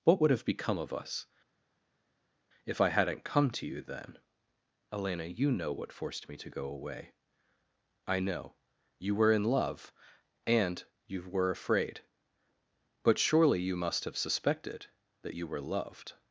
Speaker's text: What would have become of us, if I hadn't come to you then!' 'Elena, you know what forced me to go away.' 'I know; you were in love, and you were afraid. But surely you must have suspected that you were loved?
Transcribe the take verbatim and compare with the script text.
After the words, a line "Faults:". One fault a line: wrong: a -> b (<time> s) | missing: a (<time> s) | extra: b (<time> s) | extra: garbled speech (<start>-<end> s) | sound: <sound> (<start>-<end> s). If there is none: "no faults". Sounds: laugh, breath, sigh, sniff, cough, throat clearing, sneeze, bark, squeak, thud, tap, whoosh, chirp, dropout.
What would have become of us, if I hadn't come to you then!' 'Elena, you know what forced me to go away.' 'I know; you were in love, and you were afraid. But surely you must have suspected that you were loved?
Faults:
no faults